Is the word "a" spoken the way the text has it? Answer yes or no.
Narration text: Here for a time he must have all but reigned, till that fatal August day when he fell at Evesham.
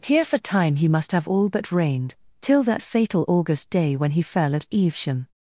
no